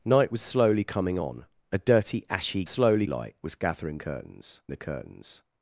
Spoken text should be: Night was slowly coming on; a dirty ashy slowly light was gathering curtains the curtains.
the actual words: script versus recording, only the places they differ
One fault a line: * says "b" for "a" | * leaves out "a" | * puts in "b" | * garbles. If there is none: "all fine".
all fine